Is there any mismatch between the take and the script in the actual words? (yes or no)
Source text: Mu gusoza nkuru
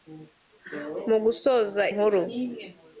no